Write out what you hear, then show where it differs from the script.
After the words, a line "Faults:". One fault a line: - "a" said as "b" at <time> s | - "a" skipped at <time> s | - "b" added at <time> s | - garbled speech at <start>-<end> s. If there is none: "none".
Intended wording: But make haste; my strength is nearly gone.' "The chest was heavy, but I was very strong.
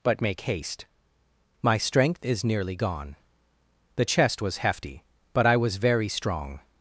But make haste; my strength is nearly gone.' "The chest was hefty, but I was very strong.
Faults:
- "heavy" said as "hefty" at 4.6 s